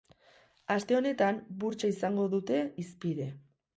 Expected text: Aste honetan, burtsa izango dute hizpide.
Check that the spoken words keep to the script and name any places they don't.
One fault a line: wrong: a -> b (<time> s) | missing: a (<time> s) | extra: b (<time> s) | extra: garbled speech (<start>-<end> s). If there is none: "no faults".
no faults